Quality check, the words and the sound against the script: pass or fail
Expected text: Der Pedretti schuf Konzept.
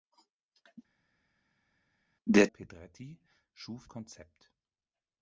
pass